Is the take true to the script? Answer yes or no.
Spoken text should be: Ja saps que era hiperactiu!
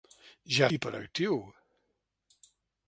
no